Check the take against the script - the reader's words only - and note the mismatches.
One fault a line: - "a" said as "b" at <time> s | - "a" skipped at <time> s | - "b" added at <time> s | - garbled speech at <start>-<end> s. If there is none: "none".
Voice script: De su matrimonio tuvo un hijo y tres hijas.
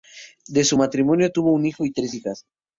none